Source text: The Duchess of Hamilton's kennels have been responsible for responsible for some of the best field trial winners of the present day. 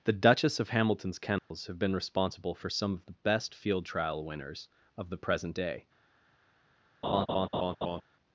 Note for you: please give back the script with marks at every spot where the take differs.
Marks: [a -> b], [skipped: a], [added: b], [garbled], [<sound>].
The Duchess of Hamilton's kennels [dropout] have been responsible for [skipped: responsible for] some of the best field trial winners of the present day. [laugh]